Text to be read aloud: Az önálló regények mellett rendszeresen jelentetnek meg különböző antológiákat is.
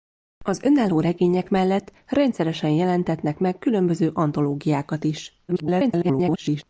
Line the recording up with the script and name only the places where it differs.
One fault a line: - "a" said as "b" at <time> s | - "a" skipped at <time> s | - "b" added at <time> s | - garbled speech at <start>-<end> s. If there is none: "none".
- garbled speech at 5.5-6.6 s